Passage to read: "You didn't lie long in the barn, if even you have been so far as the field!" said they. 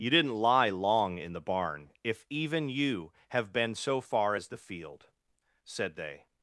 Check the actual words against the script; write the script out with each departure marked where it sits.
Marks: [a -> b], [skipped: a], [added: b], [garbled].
"You didn't lie long in the barn, if even you have been so far as the field!" said they.